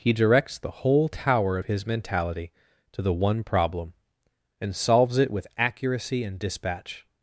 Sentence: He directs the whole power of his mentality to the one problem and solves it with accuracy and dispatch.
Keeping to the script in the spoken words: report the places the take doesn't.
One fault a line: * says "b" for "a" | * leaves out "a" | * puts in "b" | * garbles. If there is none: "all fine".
* says "tower" for "power"